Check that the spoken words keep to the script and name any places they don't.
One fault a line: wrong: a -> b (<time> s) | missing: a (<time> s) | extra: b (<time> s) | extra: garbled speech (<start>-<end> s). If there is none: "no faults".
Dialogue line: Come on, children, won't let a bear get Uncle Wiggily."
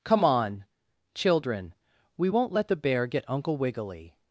extra: we (2.2 s)
wrong: a -> the (2.7 s)